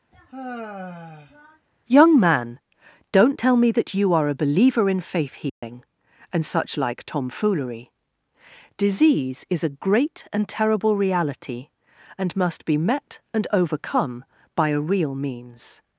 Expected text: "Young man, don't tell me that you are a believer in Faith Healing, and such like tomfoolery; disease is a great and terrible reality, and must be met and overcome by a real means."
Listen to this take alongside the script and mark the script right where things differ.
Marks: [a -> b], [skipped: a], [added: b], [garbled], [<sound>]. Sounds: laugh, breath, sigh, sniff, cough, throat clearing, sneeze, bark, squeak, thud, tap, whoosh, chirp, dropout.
[sigh] "Young man, don't tell me that you are a believer in Faith Healing, [dropout] and such like tomfoolery; disease is a great and terrible reality, and must be met and overcome by a real means."